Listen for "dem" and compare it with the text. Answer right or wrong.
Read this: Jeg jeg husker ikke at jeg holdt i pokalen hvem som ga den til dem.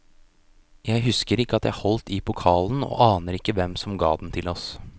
wrong